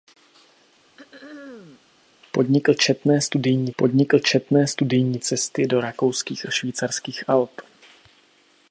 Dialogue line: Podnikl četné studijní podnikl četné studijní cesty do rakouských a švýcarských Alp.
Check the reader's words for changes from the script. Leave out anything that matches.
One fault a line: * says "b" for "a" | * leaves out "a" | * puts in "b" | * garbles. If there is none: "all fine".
all fine